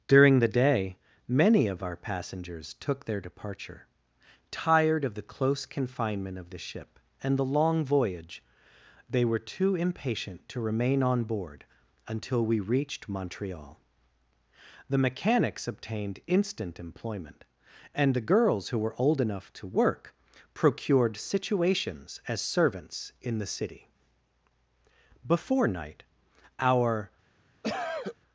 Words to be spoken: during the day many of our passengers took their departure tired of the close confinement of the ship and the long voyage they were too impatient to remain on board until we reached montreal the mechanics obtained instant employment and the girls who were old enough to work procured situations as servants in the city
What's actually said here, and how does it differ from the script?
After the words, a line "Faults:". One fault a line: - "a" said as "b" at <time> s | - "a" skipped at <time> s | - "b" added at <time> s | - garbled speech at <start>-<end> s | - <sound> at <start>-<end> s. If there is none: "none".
during the day many of our passengers took their departure tired of the close confinement of the ship and the long voyage they were too impatient to remain on board until we reached montreal the mechanics obtained instant employment and the girls who were old enough to work procured situations as servants in the city before night our
Faults:
- "before night our" added at 25.2 s
- cough at 27.6-28.2 s